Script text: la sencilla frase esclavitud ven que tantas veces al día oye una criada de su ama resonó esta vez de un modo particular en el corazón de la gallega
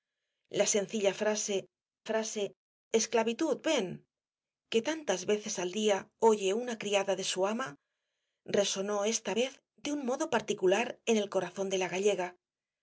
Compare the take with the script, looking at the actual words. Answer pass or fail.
fail